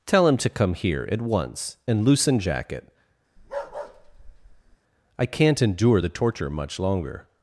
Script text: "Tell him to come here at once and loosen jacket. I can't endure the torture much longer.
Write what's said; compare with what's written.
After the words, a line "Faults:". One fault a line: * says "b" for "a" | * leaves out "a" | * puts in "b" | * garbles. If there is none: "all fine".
"Tell him to come here at once and loosen jacket. I can't endure the torture much longer.
Faults:
all fine